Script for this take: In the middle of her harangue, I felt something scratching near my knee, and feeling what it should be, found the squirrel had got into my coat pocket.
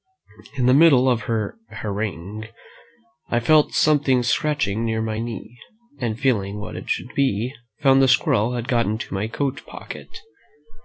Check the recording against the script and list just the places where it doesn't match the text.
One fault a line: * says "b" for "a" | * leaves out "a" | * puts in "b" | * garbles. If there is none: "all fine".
all fine